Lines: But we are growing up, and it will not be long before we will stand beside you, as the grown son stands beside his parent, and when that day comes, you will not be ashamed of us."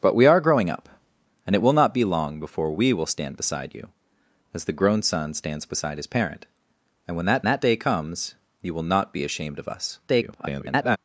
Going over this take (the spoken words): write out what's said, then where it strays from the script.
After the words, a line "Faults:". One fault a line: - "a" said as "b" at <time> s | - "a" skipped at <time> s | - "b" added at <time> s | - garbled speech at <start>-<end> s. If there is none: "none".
But we are growing up, and it will not be long before we will stand beside you, as the grown son stands beside his parent, and when that that day comes, you will not be ashamed of us." [garbled]
Faults:
- "that" added at 7.5 s
- garbled speech at 10.1-11.0 s